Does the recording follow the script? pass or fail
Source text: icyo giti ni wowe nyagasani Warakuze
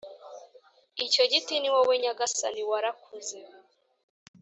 pass